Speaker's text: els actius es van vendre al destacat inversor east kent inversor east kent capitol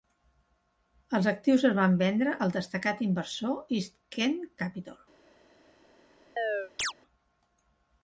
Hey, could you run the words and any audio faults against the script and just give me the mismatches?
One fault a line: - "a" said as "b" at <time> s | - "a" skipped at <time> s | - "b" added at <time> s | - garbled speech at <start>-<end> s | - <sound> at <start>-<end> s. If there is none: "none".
- "inversor east kent" skipped at 4.4 s
- chirp at 6.4-6.9 s